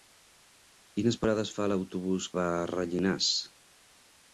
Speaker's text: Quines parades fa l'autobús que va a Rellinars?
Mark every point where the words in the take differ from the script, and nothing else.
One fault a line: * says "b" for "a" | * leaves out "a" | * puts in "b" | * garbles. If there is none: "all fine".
* leaves out "que"